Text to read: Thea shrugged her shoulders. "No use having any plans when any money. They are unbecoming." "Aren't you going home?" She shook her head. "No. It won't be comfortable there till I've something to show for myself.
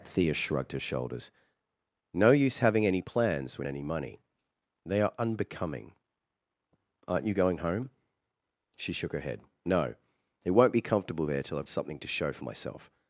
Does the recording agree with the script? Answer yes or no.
yes